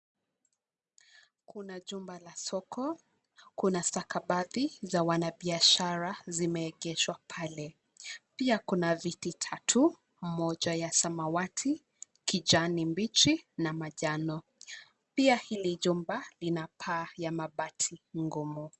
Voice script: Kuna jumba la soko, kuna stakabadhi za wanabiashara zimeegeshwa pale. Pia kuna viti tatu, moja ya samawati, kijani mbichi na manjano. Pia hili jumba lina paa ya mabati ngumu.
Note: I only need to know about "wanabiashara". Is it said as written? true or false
true